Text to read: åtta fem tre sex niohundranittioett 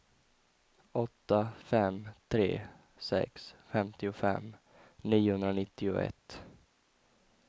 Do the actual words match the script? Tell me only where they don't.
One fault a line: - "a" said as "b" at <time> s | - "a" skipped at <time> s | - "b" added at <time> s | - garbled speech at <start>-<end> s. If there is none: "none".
- "femtiofem" added at 3.7 s